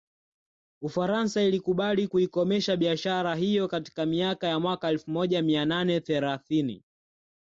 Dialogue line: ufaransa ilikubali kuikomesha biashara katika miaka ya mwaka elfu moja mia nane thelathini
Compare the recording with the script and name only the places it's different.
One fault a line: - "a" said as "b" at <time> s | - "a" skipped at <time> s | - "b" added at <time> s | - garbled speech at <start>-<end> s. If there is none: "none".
- "hiyo" added at 3.3 s